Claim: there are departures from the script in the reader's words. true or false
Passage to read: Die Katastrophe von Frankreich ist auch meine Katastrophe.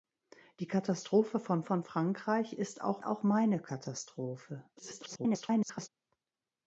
true